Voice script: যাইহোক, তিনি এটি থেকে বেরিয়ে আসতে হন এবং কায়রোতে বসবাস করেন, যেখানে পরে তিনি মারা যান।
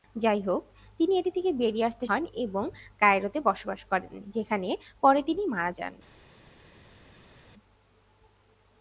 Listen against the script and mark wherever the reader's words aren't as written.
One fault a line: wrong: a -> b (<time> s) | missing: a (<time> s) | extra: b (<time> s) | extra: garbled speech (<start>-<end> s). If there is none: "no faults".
no faults